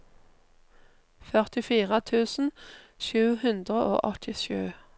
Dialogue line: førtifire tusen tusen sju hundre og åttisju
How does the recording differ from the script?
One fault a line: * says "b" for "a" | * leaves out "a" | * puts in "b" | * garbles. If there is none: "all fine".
* leaves out "tusen"